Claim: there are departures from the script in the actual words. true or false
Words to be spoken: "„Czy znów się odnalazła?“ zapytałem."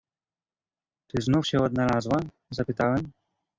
false